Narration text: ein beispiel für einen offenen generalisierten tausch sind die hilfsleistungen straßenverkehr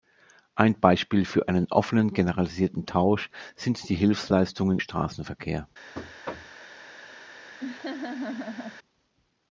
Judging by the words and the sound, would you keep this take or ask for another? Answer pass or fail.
fail